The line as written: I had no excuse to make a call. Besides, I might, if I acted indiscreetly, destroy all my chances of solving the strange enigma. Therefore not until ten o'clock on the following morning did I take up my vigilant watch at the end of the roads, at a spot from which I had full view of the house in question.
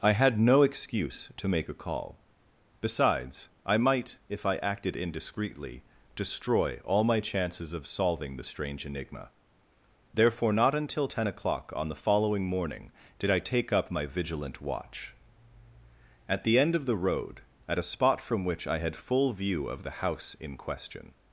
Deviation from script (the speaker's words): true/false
true